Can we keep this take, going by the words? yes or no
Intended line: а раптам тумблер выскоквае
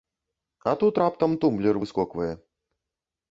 no